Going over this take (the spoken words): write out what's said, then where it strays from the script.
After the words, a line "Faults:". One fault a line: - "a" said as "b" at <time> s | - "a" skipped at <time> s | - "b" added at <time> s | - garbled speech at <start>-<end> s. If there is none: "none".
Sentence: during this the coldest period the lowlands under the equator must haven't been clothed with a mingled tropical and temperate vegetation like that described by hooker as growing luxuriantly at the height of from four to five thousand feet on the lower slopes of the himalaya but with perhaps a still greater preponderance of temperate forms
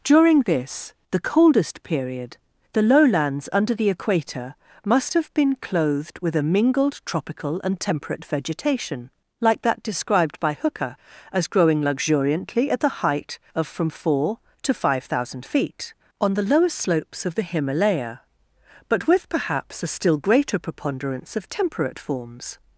during this the coldest period the lowlands under the equator must have been clothed with a mingled tropical and temperate vegetation like that described by hooker as growing luxuriantly at the height of from four to five thousand feet on the lower slopes of the himalaya but with perhaps a still greater preponderance of temperate forms
Faults:
- "haven't" said as "have" at 5.1 s